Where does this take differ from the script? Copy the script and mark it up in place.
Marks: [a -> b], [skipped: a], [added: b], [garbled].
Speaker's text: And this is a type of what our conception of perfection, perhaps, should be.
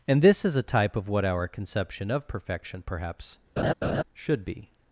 And this is a type of what our conception of perfection, perhaps, should be.